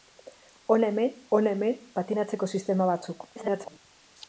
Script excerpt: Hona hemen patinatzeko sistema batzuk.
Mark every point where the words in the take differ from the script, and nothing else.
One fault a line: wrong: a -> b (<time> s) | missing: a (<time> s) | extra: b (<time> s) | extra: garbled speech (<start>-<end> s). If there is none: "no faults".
extra: hona hemen (1.4 s)
extra: garbled speech (3.4-3.8 s)